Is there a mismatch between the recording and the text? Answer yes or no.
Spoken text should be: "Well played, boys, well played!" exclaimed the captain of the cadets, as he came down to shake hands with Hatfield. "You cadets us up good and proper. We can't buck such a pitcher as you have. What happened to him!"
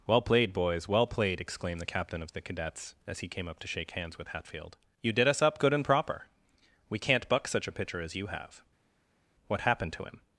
yes